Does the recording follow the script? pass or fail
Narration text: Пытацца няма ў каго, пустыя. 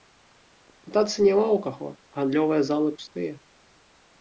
fail